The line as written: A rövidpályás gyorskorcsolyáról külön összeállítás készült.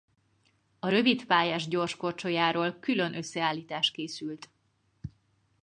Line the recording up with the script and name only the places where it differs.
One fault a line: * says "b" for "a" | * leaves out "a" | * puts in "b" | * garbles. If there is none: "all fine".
all fine